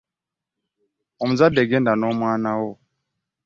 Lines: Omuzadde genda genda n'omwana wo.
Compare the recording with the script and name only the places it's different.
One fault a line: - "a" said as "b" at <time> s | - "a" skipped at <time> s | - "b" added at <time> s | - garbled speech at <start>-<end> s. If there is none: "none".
- "genda" skipped at 1.9 s